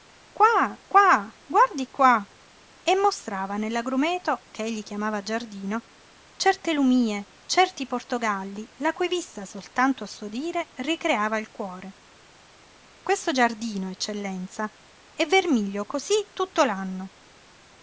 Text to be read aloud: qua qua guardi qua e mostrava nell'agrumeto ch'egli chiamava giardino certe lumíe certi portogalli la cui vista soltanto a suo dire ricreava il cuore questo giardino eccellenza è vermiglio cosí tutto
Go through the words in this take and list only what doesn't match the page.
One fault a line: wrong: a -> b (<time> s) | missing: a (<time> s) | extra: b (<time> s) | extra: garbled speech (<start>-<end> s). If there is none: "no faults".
no faults